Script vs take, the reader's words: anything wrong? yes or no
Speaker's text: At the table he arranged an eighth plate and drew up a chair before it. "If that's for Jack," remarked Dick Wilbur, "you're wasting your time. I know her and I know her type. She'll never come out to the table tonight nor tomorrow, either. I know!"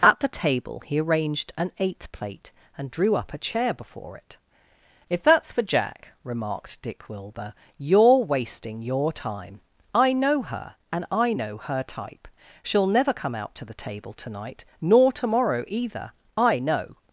no